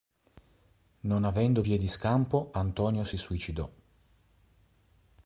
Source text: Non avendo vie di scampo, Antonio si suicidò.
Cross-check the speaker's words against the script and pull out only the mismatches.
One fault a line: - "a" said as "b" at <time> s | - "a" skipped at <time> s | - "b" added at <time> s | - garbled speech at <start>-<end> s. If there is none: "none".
none